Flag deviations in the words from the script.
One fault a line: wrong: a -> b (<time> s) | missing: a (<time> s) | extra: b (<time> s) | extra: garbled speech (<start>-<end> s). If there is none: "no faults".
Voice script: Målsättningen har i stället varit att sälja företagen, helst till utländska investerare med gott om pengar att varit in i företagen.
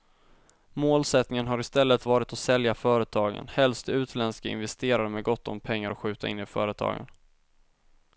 wrong: varit -> skjuta (6.0 s)